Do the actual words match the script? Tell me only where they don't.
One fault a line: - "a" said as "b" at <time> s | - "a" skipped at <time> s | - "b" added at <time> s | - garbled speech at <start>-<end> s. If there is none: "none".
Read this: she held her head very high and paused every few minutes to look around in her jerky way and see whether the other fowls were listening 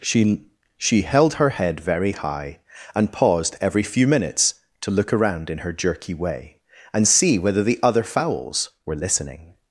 - "she" added at 0.8 s